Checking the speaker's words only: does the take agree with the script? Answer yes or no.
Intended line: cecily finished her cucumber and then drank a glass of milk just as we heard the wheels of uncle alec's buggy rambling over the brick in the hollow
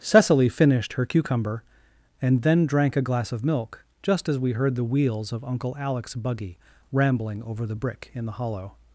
yes